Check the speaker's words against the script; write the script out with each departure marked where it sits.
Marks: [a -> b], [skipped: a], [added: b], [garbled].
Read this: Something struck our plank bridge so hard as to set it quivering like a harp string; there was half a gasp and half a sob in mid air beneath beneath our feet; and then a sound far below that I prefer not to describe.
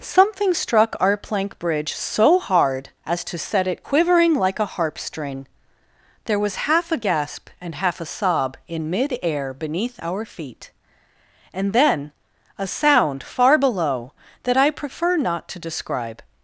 Something struck our plank bridge so hard as to set it quivering like a harp string; there was half a gasp and half a sob in mid air beneath [skipped: beneath] our feet; and then a sound far below that I prefer not to describe.